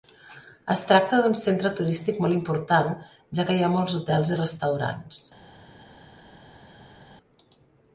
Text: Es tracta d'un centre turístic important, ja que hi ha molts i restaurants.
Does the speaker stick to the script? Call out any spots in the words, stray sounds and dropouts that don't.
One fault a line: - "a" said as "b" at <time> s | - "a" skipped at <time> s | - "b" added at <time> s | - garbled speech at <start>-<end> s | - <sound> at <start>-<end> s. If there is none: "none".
- "molt" added at 2.2 s
- "hotels" added at 4.0 s